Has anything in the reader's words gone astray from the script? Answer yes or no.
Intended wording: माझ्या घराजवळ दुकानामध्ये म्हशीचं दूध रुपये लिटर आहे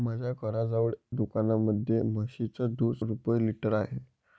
no